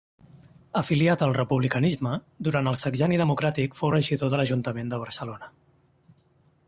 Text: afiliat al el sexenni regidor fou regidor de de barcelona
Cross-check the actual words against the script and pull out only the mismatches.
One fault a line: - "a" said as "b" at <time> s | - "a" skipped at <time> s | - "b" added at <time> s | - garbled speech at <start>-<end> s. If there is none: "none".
- "republicanisme durant" added at 1.4 s
- "regidor" said as "democràtic" at 3.2 s
- "l'ajuntament" added at 4.4 s